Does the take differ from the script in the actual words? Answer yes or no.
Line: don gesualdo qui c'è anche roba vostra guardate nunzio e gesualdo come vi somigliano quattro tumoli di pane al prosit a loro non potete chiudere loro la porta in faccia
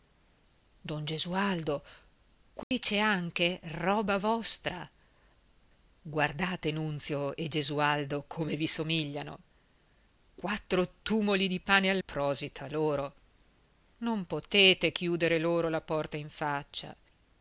no